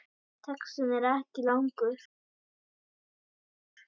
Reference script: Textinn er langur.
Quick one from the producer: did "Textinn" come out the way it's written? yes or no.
yes